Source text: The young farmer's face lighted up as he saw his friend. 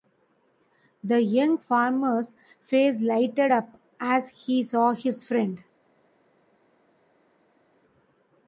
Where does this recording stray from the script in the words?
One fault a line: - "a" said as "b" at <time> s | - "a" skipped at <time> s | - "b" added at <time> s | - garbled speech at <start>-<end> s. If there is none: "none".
none